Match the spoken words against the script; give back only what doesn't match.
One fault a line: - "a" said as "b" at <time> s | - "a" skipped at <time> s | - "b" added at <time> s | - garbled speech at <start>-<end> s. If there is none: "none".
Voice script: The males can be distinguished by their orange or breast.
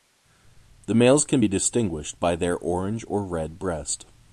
- "red" added at 3.2 s